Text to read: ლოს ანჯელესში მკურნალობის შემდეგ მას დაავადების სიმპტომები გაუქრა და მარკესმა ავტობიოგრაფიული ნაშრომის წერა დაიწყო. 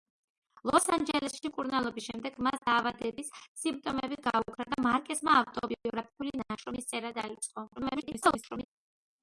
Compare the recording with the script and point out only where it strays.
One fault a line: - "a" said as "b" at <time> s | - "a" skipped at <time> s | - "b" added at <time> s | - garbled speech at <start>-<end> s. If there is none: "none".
- garbled speech at 7.8-8.7 s